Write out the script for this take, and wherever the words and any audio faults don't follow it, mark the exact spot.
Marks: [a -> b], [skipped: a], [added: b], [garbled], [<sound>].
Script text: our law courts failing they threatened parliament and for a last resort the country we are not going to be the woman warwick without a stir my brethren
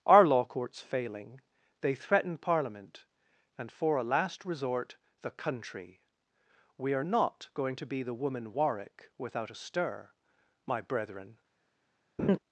our law courts failing they [threatened -> threaten] parliament and for a last resort the country we are not going to be the woman warwick without a stir my brethren [laugh]